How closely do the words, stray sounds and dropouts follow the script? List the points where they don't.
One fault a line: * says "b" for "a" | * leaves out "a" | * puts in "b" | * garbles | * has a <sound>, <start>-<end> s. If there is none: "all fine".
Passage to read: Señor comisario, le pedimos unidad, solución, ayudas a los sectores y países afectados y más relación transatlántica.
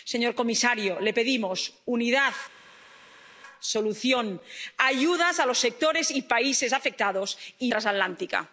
* leaves out "más relación"